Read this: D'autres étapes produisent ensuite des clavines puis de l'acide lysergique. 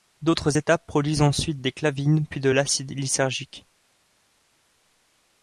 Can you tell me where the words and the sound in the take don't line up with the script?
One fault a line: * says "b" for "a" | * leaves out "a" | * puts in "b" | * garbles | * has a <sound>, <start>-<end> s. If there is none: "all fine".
all fine